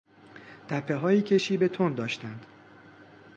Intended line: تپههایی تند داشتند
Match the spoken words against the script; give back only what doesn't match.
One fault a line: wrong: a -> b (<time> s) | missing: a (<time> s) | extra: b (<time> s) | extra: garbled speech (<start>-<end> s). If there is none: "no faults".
extra: که شیب (1.2 s)